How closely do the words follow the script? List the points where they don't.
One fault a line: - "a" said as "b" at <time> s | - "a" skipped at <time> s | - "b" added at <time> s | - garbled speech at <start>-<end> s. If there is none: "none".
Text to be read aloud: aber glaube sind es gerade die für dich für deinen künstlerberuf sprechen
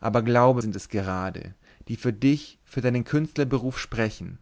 none